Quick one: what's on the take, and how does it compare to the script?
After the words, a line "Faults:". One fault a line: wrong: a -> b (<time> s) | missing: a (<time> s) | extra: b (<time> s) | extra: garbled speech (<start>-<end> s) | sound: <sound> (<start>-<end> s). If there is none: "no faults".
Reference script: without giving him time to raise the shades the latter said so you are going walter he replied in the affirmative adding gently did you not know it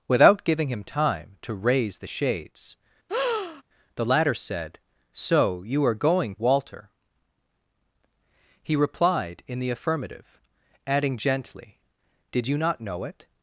without giving him time to raise the shades the latter said so you are going walter he replied in the affirmative adding gently did you not know it
Faults:
sound: breath (3.1-3.6 s)